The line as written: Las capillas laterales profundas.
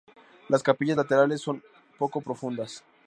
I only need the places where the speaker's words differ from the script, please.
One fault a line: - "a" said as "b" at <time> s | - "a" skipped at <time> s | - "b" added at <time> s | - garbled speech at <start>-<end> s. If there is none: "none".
- "son poco" added at 1.4 s